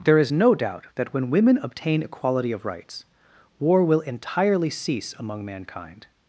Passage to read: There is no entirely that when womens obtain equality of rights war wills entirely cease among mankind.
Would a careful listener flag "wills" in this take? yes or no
yes